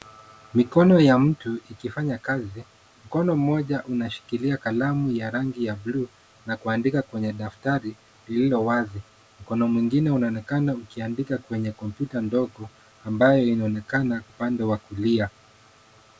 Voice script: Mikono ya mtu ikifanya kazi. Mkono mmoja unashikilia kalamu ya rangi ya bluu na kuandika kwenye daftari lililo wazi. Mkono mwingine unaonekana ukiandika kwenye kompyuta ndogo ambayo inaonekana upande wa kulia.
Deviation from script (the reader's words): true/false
false